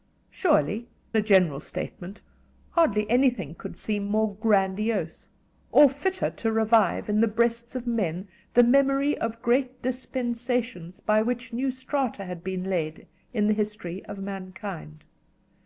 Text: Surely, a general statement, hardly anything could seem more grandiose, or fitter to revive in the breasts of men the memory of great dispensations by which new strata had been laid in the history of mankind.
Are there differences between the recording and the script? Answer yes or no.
no